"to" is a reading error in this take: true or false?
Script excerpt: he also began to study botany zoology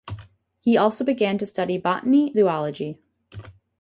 false